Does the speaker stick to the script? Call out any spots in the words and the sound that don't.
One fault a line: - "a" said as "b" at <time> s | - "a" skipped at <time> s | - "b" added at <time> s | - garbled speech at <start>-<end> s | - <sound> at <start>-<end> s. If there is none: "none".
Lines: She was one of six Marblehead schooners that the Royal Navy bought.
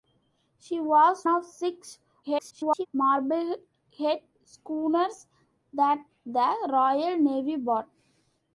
- "one" skipped at 1.3 s
- garbled speech at 2.2-2.9 s